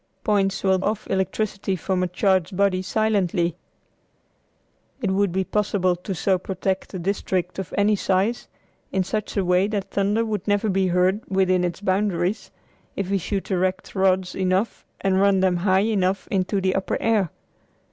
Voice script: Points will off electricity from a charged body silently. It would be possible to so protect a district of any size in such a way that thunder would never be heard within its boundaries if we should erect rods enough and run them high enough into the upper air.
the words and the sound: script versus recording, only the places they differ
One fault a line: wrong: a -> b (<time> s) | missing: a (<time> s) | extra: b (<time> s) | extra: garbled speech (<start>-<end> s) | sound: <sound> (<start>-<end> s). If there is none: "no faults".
no faults